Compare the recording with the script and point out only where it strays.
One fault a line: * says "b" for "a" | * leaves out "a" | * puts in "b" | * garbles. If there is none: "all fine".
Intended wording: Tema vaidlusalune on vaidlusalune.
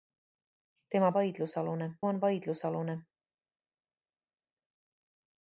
all fine